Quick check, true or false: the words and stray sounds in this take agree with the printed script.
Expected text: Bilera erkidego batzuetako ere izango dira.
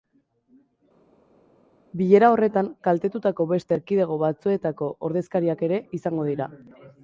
false